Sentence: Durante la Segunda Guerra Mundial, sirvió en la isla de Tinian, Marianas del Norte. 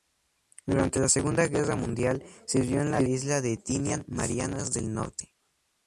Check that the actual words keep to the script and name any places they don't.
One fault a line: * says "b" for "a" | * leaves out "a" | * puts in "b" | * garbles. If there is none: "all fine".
all fine